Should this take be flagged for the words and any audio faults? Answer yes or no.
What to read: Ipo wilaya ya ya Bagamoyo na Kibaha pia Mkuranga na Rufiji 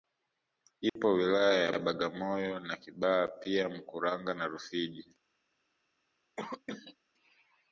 yes